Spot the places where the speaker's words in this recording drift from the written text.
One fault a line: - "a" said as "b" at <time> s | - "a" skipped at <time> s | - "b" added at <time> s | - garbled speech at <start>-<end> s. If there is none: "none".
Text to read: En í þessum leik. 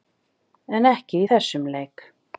- "ekki" added at 0.9 s